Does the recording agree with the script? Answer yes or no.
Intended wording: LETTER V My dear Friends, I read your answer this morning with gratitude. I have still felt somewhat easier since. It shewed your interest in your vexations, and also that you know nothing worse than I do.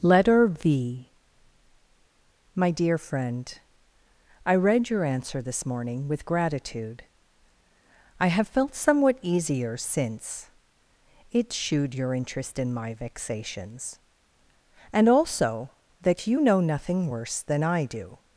no